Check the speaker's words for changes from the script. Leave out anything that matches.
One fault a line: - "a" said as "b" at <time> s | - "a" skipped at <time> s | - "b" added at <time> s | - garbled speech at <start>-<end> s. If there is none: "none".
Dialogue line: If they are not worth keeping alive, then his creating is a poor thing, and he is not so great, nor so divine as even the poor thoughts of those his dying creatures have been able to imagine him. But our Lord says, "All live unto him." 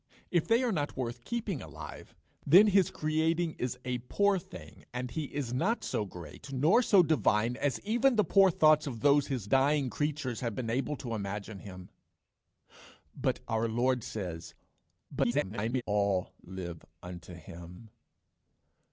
- garbled speech at 15.1-15.8 s